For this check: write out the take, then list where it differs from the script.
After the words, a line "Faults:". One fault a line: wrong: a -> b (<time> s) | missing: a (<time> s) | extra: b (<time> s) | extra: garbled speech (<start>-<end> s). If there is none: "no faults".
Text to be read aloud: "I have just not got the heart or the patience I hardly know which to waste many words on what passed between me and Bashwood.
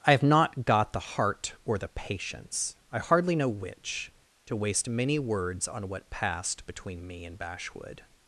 "I have not got the heart or the patience I hardly know which to waste many words on what passed between me and Bashwood.
Faults:
missing: just (0.2 s)